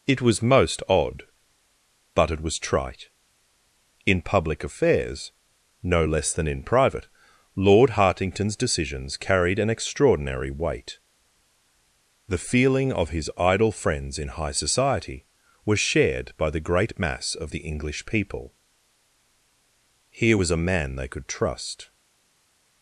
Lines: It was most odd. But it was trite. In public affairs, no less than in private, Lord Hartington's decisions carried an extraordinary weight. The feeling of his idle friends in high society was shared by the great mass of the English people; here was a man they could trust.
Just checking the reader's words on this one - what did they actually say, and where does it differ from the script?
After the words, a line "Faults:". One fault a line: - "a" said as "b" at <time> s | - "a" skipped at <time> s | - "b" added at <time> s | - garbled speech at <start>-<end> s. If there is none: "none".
It was most odd. But it was trite. In public affairs, no less than in private, Lord Hartington's decisions carried an extraordinary weight. The feeling of his idle friends in high society was shared by the great mass of the English people; here was a man they could trust.
Faults:
none